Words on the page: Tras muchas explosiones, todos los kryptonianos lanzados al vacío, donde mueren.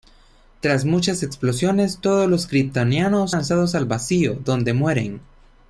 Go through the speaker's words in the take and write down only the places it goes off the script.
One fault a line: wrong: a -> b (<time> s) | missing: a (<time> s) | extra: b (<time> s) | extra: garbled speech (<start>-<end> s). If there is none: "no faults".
no faults